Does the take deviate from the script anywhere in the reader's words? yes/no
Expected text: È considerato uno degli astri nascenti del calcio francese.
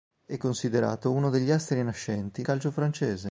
yes